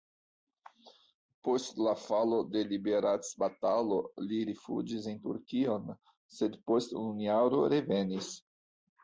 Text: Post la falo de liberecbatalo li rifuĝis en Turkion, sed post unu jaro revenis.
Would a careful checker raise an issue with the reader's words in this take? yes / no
no